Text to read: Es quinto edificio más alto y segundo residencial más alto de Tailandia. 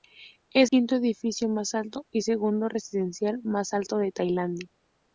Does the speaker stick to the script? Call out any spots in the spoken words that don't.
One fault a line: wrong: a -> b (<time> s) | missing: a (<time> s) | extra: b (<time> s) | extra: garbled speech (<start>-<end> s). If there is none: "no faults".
no faults